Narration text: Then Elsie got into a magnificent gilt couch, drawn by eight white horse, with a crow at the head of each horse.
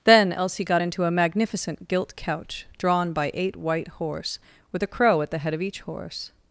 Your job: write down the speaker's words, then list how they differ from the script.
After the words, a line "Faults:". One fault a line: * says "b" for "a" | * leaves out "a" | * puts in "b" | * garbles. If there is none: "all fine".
Then Elsie got into a magnificent gilt couch, drawn by eight white horse, with a crow at the head of each horse.
Faults:
all fine